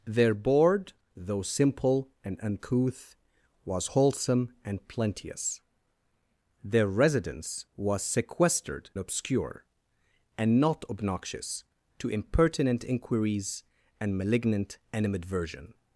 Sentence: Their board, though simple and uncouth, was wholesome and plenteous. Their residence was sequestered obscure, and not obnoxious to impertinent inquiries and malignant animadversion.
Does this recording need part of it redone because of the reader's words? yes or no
no